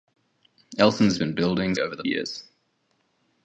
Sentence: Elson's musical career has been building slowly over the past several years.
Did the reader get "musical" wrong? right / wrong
wrong